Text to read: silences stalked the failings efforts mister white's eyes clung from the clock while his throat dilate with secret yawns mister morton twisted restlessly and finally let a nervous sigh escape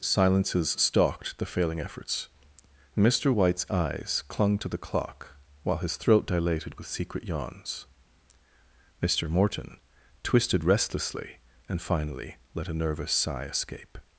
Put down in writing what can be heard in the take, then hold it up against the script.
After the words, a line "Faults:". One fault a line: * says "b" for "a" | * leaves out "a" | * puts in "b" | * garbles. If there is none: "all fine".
silences stalked the failing efforts mister white's eyes clung to the clock while his throat dilated with secret yawns mister morton twisted restlessly and finally let a nervous sigh escape
Faults:
* says "failing" for "failings"
* says "to" for "from"
* says "dilated" for "dilate"